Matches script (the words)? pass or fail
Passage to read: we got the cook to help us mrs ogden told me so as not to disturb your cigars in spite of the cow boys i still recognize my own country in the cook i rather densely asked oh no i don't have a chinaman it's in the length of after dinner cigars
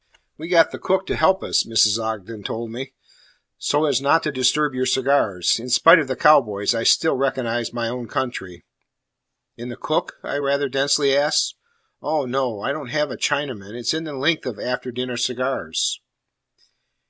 pass